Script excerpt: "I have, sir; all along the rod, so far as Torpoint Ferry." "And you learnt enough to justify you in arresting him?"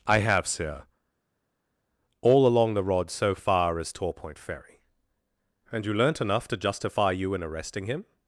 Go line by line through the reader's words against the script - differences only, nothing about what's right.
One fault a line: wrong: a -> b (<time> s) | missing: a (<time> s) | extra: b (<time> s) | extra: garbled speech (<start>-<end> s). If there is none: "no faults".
no faults